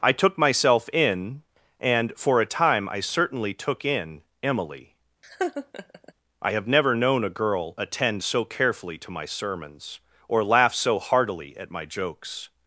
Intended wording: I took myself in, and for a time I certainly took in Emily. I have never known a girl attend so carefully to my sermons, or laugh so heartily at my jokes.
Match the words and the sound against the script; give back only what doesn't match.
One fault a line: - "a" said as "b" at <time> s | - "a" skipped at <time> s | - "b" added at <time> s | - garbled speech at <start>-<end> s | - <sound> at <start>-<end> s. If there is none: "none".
- laugh at 5.2-6.1 s